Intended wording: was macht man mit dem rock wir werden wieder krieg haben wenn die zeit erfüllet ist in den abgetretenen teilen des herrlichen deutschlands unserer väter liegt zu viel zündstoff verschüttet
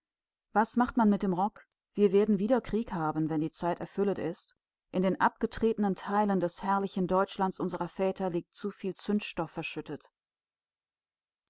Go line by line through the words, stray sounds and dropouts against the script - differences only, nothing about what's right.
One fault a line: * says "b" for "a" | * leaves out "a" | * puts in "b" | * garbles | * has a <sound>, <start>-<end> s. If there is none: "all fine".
all fine